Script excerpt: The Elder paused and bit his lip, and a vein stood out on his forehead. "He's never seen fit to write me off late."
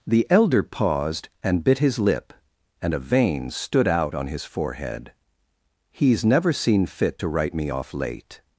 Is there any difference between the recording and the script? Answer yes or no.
no